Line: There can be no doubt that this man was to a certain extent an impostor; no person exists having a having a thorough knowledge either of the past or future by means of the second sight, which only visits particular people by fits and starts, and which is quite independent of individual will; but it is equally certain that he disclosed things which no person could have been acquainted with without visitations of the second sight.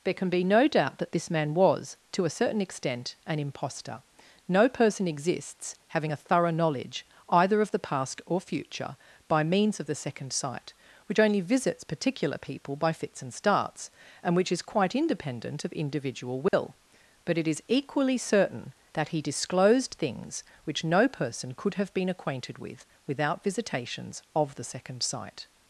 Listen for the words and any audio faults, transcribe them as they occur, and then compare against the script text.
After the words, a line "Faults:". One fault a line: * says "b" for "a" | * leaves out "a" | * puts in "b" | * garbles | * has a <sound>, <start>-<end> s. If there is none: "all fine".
There can be no doubt that this man was to a certain extent an impostor; no person exists having a thorough knowledge either of the past or future by means of the second sight, which only visits particular people by fits and starts, and which is quite independent of individual will; but it is equally certain that he disclosed things which no person could have been acquainted with without visitations of the second sight.
Faults:
* leaves out "having a"
* has a dropout, 16.5-16.5 s